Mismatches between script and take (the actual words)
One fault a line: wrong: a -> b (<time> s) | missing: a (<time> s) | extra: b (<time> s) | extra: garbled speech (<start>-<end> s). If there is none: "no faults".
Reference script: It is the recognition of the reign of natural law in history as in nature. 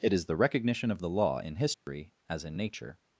missing: reign of natural (1.1 s)